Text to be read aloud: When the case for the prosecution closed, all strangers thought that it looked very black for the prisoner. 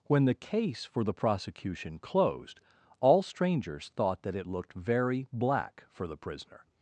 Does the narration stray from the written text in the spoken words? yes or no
no